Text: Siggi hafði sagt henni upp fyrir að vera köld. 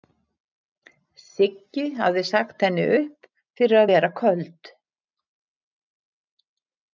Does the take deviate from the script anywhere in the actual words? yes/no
no